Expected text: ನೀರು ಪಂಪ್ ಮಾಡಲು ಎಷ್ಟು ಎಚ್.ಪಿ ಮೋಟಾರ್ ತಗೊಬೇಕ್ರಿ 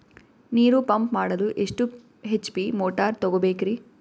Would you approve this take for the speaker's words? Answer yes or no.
yes